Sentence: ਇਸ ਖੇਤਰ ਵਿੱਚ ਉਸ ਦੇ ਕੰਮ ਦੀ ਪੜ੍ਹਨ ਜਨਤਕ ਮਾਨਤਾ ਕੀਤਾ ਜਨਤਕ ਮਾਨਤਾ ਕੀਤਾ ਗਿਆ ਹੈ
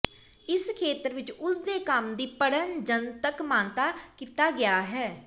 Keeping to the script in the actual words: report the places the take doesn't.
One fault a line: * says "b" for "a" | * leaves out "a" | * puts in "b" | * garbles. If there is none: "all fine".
* leaves out "ਜਨਤਕ ਮਾਨਤਾ ਕੀਤਾ"